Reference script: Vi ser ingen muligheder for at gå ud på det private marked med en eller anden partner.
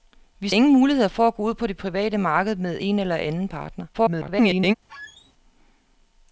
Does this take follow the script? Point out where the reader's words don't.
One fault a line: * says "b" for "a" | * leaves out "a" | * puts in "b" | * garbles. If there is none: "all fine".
* leaves out "ser"
* garbles